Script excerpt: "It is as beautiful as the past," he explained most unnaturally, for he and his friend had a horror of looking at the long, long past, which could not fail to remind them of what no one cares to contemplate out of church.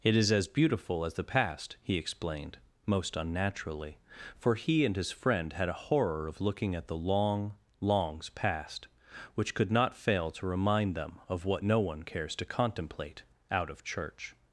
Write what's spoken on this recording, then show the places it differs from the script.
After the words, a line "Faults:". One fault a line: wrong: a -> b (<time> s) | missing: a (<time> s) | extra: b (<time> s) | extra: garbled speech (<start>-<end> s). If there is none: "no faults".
"It is as beautiful as the past," he explained most unnaturally, for he and his friend had a horror of looking at the long, longs past, which could not fail to remind them of what no one cares to contemplate out of church.
Faults:
wrong: long -> longs (7.8 s)